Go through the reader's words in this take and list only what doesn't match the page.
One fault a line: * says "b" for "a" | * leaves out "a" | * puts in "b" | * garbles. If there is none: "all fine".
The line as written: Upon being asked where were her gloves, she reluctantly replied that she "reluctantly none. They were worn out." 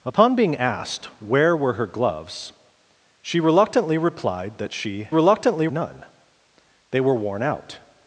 all fine